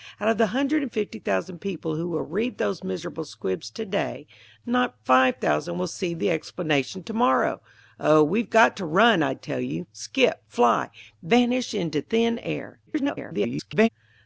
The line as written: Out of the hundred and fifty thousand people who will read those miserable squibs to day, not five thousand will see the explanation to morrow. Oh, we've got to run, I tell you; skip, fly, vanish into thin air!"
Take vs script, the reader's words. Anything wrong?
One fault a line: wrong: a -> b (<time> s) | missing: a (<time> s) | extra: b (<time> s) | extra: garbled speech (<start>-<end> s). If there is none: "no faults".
extra: garbled speech (12.9-13.9 s)